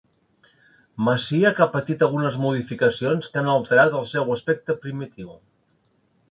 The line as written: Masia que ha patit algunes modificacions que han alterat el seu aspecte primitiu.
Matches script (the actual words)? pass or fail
pass